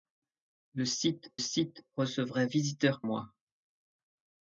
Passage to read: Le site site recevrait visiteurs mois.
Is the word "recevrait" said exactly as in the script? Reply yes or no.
yes